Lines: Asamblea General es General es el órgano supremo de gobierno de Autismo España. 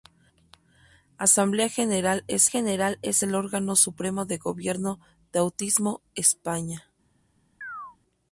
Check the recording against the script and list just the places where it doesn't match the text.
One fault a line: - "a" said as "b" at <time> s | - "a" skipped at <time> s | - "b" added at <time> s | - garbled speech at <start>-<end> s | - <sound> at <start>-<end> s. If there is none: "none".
- chirp at 7.6-8.0 s